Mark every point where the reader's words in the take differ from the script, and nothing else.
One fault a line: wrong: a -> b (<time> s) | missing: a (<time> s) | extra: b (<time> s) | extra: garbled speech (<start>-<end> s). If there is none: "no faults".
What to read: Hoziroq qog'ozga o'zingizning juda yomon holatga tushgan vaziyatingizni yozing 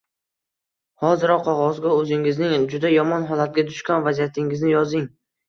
no faults